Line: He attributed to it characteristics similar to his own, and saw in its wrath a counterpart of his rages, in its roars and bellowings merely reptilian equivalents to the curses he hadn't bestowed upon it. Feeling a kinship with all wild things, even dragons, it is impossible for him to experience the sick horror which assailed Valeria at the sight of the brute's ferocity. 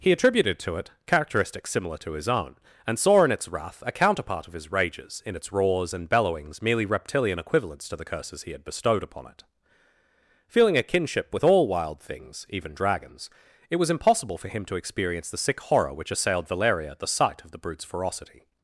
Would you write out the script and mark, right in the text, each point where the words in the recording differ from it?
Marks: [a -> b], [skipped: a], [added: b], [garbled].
He attributed to it characteristics similar to his own, and saw in its wrath a counterpart of his rages, in its roars and bellowings merely reptilian equivalents to the curses he [hadn't -> had] bestowed upon it. Feeling a kinship with all wild things, even dragons, it [is -> was] impossible for him to experience the sick horror which assailed Valeria at the sight of the brute's ferocity.